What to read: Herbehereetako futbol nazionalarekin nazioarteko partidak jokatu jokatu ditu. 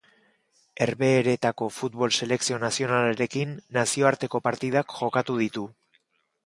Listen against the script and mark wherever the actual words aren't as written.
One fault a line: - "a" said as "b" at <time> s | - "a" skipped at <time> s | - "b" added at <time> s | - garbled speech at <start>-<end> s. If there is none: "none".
- "selekzio" added at 2.2 s
- "jokatu" skipped at 5.4 s